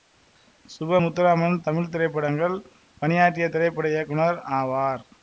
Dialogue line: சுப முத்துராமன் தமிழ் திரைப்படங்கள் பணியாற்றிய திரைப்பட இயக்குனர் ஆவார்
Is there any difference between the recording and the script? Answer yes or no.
no